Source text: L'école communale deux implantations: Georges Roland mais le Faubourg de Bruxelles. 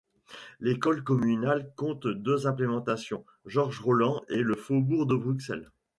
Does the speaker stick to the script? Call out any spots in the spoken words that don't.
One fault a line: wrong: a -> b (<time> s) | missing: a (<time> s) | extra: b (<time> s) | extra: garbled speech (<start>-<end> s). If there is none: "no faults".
extra: compte (1.8 s)
wrong: mais -> et (4.3 s)